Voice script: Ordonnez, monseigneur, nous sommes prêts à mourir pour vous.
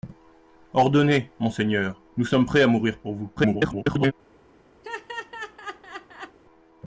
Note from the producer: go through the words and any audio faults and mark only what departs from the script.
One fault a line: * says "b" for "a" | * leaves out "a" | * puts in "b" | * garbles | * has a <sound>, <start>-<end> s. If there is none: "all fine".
* garbles
* has a laugh, 4.8-6.4 s